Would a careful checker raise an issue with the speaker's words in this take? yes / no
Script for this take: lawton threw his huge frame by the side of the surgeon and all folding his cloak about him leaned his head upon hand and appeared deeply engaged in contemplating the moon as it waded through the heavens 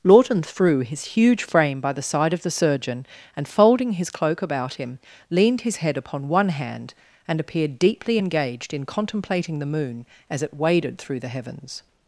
yes